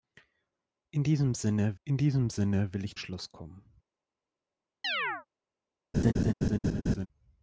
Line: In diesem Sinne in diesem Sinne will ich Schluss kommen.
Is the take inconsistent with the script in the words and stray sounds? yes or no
yes